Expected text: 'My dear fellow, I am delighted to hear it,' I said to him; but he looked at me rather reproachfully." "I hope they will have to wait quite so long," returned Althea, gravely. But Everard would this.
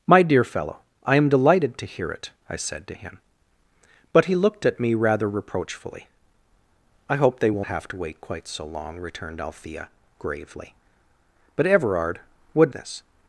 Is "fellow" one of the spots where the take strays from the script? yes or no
no